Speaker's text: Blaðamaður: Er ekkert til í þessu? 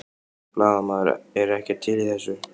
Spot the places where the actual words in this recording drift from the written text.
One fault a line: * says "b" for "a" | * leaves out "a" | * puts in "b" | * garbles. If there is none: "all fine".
all fine